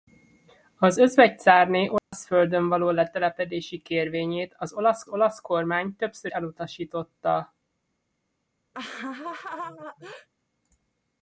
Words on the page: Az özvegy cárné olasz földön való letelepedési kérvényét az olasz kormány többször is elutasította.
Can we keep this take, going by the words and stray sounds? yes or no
no